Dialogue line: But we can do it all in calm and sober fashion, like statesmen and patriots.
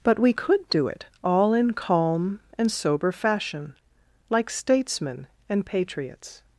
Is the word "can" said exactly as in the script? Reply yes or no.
no